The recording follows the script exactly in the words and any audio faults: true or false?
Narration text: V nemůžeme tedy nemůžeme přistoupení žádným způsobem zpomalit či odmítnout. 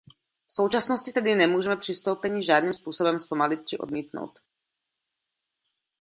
false